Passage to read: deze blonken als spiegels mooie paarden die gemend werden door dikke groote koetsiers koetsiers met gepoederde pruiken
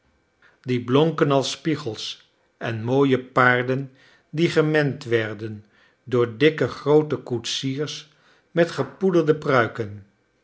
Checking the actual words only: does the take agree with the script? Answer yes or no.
no